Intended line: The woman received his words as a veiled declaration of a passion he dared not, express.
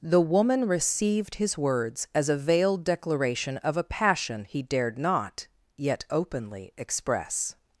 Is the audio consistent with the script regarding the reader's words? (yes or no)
no